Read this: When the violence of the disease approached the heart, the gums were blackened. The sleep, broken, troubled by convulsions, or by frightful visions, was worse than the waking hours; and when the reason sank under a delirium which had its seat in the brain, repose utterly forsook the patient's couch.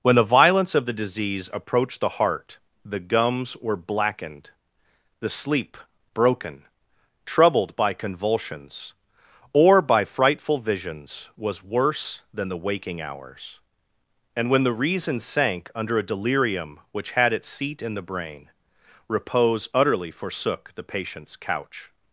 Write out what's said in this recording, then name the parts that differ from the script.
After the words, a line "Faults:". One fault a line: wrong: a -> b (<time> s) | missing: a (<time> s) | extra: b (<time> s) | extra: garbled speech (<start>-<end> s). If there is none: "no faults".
When the violence of the disease approached the heart, the gums were blackened. The sleep, broken, troubled by convulsions, or by frightful visions, was worse than the waking hours; and when the reason sank under a delirium which had its seat in the brain, repose utterly forsook the patient's couch.
Faults:
no faults